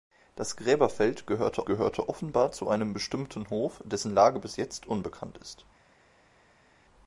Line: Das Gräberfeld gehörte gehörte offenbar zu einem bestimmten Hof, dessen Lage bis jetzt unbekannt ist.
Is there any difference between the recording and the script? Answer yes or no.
no